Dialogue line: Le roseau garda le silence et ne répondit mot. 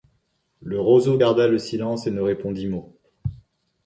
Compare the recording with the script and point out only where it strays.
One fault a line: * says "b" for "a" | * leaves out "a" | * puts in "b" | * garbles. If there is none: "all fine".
all fine